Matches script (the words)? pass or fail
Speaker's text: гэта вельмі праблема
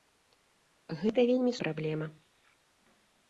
pass